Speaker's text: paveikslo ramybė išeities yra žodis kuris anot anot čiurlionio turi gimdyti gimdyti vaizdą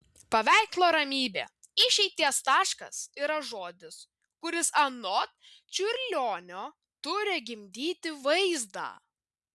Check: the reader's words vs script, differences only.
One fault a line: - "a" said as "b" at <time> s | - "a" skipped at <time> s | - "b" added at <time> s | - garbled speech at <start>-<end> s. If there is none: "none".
- "taškas" added at 2.5 s
- "anot" skipped at 5.3 s
- "gimdyti" skipped at 8.1 s